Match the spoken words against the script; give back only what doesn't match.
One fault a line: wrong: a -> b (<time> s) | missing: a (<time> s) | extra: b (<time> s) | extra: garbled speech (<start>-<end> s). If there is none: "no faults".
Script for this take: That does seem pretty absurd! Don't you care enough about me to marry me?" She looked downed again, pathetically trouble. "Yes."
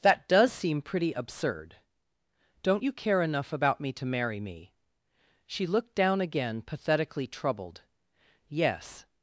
wrong: downed -> down (5.9 s)
wrong: trouble -> troubled (7.3 s)